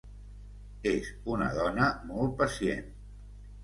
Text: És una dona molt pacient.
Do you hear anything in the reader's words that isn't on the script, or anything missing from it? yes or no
no